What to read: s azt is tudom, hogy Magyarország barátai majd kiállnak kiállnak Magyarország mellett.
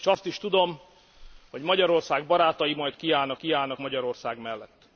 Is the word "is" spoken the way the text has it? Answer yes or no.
yes